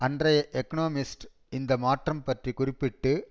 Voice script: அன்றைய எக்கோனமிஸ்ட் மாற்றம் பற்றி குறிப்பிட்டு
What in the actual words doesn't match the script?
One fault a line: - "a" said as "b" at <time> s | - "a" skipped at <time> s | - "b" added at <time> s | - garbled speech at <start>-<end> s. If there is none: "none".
- "இந்த" added at 1.5 s